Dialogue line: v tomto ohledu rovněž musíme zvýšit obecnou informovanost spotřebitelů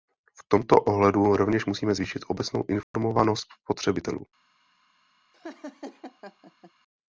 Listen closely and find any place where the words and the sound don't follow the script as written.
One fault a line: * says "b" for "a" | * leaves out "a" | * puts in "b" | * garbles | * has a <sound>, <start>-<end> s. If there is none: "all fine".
* has a dropout, 2.8-2.9 s
* has a laugh, 5.3-6.7 s